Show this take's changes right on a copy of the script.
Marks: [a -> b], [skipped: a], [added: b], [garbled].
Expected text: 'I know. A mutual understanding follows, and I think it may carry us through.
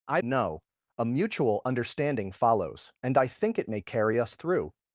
'I know. A mutual understanding follows, and I think it may carry us through.